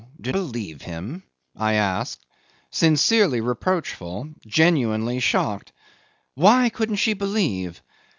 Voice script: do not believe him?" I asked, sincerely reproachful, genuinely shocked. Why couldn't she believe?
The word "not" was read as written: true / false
false